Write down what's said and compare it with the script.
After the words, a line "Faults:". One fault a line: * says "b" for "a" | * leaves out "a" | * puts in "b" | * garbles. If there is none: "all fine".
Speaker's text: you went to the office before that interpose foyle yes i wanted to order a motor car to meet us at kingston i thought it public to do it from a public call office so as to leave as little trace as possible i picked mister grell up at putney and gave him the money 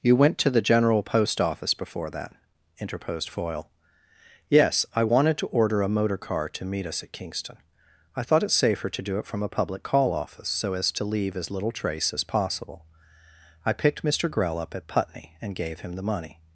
you went to the general post office before that interposed foyle yes i wanted to order a motor car to meet us at kingston i thought it safer to do it from a public call office so as to leave as little trace as possible i picked mister grell up at putney and gave him the money
Faults:
* puts in "general post"
* says "interposed" for "interpose"
* says "safer" for "public"